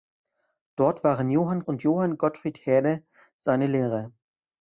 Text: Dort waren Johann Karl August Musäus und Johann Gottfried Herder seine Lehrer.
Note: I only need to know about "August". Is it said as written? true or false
false